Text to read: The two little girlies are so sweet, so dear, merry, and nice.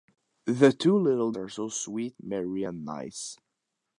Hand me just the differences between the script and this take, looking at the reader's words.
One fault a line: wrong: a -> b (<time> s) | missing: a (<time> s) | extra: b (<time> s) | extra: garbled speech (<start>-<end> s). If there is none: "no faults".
missing: girlies (1.3 s)
missing: so dear (2.2 s)